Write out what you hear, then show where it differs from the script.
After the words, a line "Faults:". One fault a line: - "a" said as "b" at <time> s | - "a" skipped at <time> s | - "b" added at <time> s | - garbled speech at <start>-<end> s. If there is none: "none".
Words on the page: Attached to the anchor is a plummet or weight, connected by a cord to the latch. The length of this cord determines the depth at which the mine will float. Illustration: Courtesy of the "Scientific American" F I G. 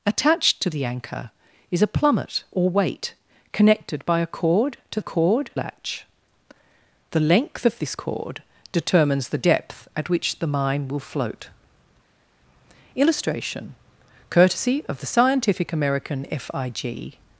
Attached to the anchor is a plummet or weight, connected by a cord to cord latch. The length of this cord determines the depth at which the mine will float. Illustration: Courtesy of the "Scientific American" F I G.
Faults:
- "the" said as "cord" at 5.0 s